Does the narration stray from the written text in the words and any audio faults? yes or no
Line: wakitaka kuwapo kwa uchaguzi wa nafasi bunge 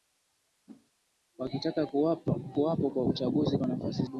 yes